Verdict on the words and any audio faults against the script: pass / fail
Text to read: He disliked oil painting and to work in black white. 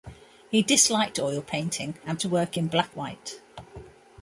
pass